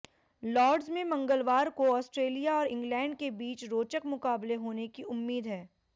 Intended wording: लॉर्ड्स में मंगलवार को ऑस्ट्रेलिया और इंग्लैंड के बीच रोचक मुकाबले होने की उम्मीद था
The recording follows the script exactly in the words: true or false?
false